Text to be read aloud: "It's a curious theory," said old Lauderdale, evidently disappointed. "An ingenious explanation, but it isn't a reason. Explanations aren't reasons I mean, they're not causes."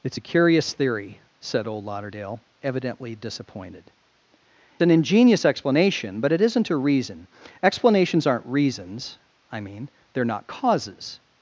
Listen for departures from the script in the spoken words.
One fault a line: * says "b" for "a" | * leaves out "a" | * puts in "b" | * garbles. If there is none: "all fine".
all fine